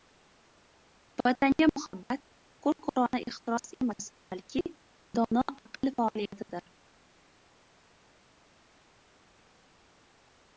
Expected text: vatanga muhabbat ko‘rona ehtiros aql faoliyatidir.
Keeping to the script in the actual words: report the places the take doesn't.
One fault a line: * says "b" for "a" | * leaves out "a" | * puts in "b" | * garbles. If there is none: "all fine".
* puts in "ko‘r"
* puts in "emas balki dono"